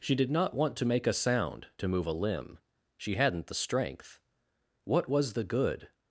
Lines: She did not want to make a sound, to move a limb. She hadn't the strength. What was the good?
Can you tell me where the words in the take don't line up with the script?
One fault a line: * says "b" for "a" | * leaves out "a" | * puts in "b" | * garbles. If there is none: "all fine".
all fine